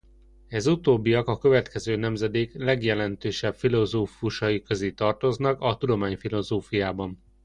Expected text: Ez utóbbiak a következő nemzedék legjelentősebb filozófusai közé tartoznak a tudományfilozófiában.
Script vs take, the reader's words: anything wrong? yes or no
no